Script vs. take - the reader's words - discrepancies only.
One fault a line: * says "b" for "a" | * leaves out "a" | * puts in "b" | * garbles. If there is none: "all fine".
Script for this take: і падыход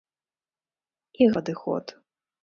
all fine